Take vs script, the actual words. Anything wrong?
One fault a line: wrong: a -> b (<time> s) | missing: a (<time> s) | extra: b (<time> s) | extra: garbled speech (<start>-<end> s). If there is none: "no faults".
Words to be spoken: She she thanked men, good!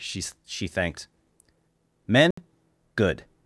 no faults